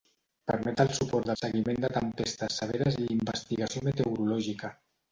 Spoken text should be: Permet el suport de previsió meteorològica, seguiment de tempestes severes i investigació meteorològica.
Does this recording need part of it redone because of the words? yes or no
yes